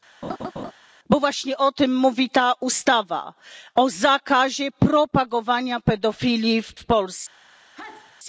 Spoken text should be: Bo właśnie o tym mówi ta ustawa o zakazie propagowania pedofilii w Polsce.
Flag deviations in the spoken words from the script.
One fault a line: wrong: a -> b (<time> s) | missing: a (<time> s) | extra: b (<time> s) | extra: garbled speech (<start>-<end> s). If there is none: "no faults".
extra: w (6.7 s)